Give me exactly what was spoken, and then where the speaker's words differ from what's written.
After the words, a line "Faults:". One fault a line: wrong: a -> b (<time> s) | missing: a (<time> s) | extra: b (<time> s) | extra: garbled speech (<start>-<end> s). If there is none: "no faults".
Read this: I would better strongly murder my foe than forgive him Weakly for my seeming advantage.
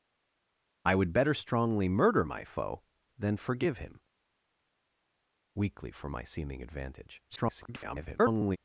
I would better strongly murder my foe than forgive him Weakly for my seeming advantage. [garbled]
Faults:
extra: garbled speech (7.3-8.6 s)